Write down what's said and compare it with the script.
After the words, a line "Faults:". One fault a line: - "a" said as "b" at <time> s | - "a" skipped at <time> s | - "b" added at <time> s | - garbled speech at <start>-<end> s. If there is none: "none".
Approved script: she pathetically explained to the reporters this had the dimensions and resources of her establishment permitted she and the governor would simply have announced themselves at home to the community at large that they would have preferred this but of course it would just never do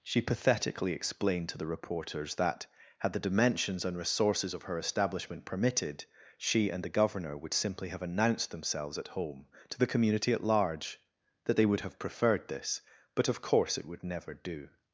she pathetically explained to the reporters that had the dimensions and resources of her establishment permitted she and the governor would simply have announced themselves at home to the community at large that they would have preferred this but of course it would never do
Faults:
- "this" said as "that" at 2.4 s
- "just" skipped at 14.0 s